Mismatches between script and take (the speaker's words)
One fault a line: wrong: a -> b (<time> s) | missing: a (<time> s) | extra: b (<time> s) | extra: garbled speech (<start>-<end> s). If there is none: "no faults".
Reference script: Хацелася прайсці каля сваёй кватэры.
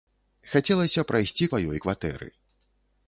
missing: каля (1.5 s)